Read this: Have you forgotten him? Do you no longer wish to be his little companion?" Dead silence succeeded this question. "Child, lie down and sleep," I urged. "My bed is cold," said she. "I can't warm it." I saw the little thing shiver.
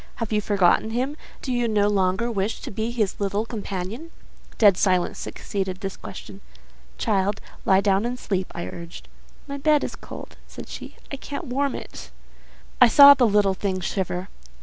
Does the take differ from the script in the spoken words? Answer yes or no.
no